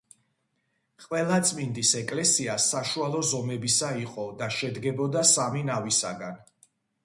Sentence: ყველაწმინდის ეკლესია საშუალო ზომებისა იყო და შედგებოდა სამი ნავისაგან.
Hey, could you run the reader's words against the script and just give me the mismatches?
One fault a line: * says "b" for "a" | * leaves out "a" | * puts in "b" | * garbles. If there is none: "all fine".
all fine